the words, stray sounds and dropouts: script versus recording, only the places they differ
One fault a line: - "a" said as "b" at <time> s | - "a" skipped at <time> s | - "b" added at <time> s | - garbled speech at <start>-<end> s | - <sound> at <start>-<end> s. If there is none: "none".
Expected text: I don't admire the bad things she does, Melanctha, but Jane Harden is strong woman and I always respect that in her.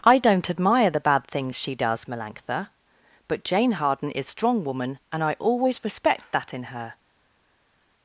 none